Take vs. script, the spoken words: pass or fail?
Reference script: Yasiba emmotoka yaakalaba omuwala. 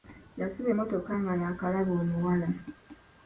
fail